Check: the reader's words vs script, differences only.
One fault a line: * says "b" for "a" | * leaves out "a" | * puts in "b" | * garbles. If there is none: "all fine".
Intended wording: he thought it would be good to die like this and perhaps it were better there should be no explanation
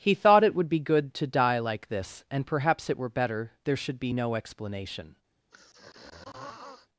all fine